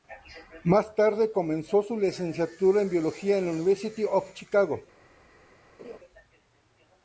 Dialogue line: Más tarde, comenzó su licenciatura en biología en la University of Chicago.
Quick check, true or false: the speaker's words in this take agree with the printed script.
true